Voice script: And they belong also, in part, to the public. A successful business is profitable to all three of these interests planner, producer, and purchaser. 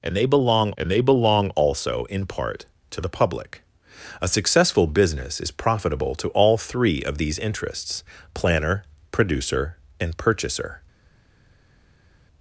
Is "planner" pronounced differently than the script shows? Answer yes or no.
no